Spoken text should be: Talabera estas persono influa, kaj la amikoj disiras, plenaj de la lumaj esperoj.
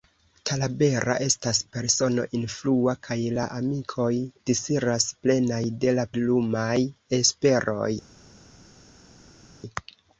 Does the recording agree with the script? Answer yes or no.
yes